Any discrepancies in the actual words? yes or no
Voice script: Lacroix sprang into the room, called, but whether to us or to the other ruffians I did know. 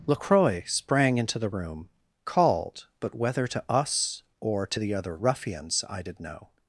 no